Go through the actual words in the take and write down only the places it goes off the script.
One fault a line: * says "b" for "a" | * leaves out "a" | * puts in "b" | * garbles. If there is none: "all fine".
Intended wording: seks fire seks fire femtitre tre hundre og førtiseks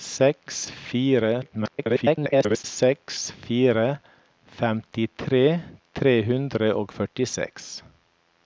* garbles